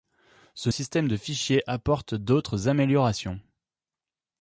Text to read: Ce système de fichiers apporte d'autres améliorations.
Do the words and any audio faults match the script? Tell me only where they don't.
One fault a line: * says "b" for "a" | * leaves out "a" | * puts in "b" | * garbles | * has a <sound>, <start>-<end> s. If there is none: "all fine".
all fine